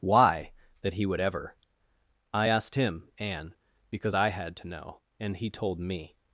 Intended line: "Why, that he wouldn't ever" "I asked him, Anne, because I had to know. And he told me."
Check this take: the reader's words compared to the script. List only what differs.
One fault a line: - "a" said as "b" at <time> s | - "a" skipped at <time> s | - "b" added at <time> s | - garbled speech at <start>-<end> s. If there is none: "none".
- "wouldn't" said as "would" at 1.1 s